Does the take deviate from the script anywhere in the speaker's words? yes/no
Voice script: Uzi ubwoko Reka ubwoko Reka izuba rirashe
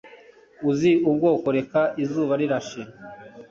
yes